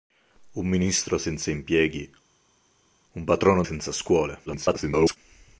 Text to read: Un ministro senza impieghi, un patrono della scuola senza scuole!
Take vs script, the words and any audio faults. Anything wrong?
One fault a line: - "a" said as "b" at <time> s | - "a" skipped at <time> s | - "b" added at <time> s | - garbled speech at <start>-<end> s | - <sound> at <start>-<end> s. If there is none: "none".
- "della scuola" skipped at 3.6 s
- garbled speech at 4.5-5.2 s